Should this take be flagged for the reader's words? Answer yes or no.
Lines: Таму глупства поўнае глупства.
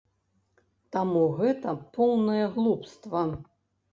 yes